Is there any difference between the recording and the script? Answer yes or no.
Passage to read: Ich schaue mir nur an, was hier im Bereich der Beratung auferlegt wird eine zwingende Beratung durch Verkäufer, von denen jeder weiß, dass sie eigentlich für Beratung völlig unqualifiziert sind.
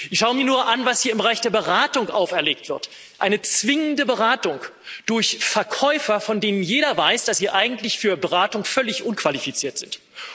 no